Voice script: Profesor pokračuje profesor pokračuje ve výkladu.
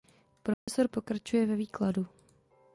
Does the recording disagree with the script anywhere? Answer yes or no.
yes